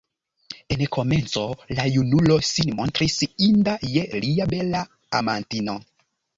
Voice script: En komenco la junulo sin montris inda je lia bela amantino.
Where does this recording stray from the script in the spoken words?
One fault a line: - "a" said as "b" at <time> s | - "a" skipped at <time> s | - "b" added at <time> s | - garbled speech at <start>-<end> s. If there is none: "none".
none